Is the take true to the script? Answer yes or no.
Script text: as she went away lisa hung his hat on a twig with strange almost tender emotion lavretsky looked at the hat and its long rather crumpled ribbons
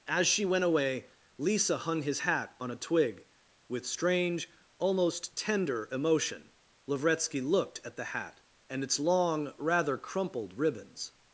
yes